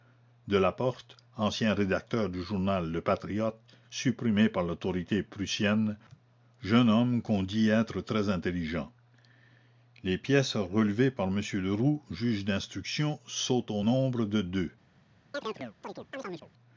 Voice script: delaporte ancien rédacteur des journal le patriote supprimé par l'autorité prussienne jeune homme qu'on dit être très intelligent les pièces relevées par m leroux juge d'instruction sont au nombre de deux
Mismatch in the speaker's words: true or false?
true